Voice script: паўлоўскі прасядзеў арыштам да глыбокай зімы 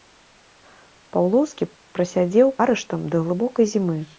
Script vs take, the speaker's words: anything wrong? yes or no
no